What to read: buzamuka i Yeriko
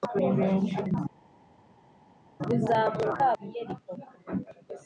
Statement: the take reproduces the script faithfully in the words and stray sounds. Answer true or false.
true